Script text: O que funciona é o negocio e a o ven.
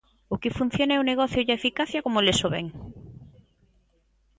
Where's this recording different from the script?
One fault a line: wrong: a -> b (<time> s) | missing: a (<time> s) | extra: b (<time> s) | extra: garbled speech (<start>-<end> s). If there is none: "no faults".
extra: eficacia como eles (1.6 s)